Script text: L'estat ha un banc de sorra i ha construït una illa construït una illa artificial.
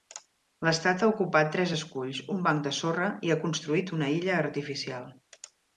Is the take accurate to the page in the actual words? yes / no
no